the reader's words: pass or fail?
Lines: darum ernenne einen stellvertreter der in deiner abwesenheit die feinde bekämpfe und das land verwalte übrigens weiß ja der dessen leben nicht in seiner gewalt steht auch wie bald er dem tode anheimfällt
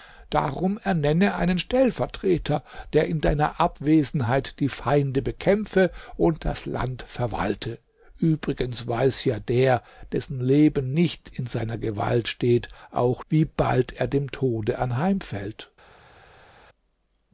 pass